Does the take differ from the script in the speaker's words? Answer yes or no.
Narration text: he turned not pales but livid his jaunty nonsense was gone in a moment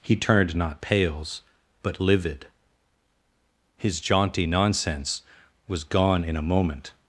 no